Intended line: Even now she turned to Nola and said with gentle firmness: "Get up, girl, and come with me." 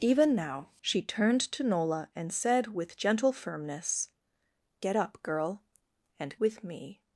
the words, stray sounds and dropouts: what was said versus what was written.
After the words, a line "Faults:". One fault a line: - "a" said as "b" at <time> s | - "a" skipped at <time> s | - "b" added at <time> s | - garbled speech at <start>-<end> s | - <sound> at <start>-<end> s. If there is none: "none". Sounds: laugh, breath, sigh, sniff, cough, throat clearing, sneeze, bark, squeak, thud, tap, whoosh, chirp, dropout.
Even now she turned to Nola and said with gentle firmness: "Get up, girl, and with me."
Faults:
- "come" skipped at 6.4 s